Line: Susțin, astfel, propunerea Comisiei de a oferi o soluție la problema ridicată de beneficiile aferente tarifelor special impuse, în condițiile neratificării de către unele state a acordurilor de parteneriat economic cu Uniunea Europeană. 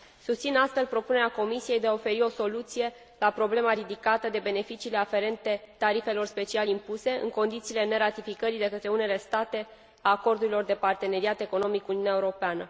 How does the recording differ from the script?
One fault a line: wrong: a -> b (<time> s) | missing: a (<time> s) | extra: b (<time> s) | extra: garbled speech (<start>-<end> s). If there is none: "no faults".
no faults